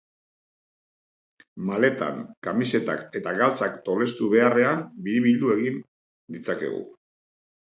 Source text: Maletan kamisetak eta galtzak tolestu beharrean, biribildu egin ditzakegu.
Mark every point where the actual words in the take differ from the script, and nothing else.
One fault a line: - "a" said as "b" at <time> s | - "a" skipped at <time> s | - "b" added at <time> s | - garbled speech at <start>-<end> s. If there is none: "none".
none